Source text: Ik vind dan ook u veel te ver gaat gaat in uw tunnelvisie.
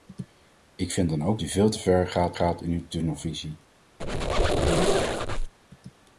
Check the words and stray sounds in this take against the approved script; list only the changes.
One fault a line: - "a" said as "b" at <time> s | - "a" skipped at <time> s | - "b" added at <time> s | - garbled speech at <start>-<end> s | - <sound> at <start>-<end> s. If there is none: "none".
- squeak at 4.0-5.5 s